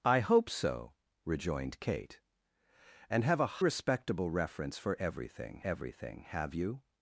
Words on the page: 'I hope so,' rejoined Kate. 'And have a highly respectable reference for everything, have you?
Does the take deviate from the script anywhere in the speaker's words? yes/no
yes